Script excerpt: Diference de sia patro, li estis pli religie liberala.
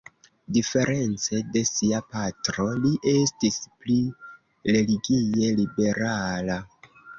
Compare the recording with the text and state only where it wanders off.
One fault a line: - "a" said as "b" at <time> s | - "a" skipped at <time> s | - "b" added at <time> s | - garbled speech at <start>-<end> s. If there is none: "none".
none